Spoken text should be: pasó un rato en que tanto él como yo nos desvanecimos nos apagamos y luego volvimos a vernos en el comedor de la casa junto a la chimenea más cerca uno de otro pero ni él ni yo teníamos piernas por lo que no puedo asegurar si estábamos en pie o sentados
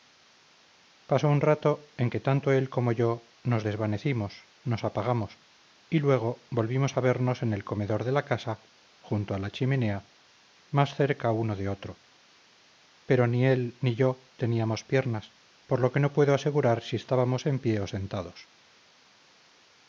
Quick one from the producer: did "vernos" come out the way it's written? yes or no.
yes